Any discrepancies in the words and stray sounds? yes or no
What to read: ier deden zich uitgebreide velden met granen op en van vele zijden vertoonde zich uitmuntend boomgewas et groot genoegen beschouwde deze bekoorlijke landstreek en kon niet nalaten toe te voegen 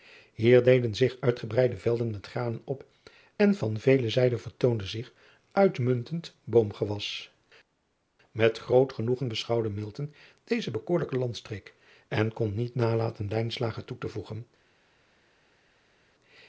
no